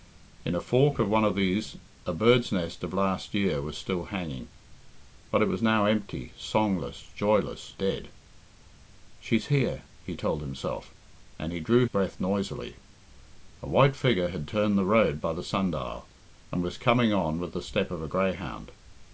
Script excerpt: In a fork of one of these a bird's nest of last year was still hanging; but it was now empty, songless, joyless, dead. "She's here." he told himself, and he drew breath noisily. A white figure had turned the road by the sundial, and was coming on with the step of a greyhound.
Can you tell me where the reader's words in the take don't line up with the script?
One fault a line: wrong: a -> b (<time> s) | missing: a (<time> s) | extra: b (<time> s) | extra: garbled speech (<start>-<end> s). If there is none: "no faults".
no faults